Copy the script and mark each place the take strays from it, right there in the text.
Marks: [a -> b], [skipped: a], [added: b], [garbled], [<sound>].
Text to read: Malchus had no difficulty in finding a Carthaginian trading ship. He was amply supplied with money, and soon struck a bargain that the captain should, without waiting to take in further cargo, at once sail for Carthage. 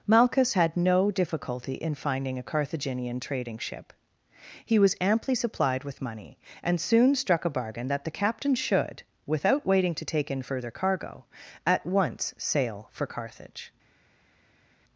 Malchus had no difficulty in finding a Carthaginian trading ship. He was amply supplied with money, and soon struck a bargain that the captain should, without waiting to take in further cargo, at once sail for Carthage.